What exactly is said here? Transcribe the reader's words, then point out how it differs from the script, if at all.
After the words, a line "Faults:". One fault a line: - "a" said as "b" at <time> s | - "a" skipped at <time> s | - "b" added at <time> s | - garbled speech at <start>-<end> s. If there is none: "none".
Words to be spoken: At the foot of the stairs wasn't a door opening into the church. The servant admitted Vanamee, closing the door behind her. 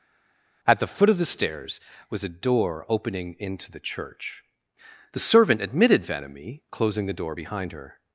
At the foot of the stairs was a door opening into the church. The servant admitted Vanamee, closing the door behind her.
Faults:
- "wasn't" said as "was" at 2.1 s